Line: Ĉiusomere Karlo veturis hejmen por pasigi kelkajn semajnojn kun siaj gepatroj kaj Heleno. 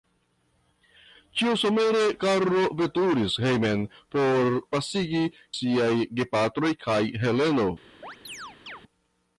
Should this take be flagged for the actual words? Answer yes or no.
yes